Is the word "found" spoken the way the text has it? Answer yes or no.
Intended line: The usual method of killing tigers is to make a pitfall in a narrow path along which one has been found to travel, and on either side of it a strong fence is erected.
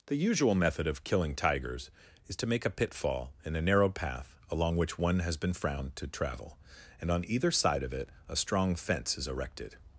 no